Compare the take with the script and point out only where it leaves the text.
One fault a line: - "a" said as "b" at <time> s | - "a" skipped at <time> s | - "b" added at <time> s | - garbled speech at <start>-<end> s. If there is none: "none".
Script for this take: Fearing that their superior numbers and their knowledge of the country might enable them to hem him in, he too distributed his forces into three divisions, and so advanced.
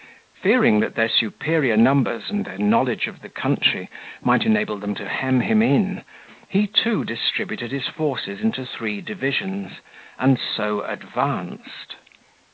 none